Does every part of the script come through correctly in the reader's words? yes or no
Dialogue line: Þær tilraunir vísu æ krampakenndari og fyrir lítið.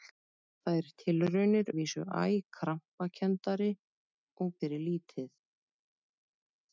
yes